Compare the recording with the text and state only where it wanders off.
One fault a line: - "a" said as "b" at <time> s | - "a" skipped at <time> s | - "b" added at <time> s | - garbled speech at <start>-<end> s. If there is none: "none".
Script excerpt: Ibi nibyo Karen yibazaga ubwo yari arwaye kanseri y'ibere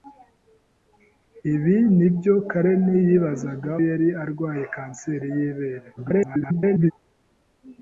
- "ubwo" skipped at 3.7 s
- garbled speech at 6.0-6.9 s